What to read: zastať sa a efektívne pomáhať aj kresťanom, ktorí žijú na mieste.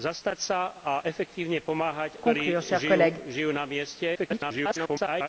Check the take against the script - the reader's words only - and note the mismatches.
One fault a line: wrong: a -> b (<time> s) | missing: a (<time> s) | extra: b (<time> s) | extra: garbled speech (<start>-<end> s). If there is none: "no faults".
missing: aj kresťanom (2.2 s)
extra: garbled speech (4.1-5.3 s)